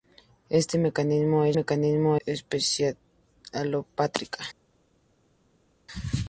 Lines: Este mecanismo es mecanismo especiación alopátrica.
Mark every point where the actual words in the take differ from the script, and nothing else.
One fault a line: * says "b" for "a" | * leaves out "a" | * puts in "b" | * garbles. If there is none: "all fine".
all fine